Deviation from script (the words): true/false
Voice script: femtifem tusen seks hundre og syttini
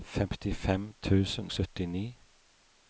true